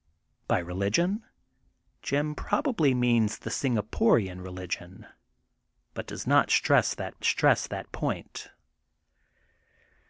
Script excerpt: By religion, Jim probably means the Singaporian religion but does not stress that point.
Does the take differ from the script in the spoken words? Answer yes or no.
yes